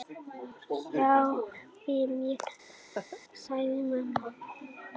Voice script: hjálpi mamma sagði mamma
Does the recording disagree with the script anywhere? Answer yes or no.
yes